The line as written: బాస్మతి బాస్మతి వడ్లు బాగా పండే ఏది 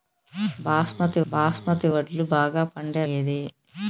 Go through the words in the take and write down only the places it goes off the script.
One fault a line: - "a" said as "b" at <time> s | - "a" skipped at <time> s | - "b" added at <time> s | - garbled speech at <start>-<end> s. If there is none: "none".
none